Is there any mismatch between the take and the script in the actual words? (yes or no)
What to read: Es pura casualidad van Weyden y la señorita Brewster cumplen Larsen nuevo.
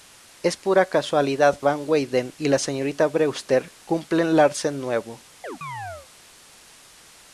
no